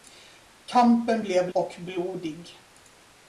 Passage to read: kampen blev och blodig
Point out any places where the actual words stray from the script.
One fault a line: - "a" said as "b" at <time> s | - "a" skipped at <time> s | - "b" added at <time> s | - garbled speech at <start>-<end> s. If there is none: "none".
none